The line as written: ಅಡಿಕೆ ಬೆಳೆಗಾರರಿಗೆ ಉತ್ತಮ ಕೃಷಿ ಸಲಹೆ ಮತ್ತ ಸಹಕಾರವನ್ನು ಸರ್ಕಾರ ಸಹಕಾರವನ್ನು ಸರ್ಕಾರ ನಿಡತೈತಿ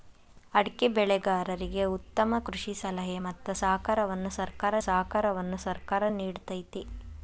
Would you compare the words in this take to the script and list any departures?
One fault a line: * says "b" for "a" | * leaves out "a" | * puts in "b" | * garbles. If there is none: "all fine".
all fine